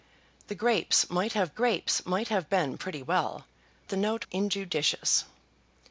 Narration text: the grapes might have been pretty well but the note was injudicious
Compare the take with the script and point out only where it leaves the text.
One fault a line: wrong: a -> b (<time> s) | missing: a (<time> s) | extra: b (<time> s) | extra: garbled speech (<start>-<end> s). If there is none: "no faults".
extra: grapes might have (1.5 s)
missing: but (3.5 s)
missing: was (4.3 s)